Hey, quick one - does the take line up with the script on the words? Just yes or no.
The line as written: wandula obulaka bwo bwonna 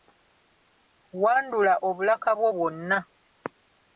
yes